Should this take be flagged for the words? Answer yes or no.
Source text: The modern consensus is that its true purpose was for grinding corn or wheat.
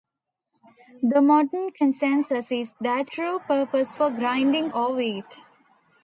yes